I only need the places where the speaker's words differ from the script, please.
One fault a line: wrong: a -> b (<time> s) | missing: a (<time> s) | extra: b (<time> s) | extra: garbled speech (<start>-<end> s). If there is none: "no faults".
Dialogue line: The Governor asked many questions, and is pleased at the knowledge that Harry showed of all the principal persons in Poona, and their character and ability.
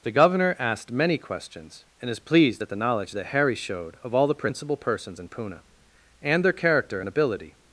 no faults